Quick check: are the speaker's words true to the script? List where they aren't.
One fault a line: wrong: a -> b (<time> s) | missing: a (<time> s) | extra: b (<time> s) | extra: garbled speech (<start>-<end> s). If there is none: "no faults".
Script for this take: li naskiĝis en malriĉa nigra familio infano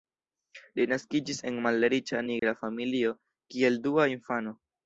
extra: kiel dua (3.6 s)